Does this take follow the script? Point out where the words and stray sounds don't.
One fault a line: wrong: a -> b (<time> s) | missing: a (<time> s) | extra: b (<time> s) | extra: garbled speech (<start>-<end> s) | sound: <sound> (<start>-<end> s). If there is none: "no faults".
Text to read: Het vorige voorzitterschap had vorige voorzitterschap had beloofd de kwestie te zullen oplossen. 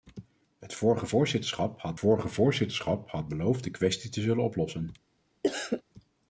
sound: cough (5.4-5.8 s)